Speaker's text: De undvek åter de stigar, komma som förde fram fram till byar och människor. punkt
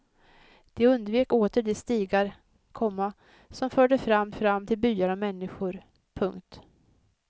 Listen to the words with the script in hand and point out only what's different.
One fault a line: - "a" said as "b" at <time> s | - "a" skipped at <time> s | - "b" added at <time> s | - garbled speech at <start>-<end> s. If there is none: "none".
none